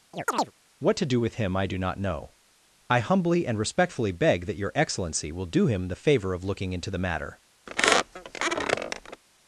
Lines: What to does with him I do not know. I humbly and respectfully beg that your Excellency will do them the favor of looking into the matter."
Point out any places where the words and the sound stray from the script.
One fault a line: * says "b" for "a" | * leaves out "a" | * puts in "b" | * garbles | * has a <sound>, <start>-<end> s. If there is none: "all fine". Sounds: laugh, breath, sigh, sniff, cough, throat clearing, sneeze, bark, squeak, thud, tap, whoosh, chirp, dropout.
* has a chirp, 0.1-0.5 s
* says "do" for "does"
* says "him" for "them"
* has a squeak, 7.7-9.2 s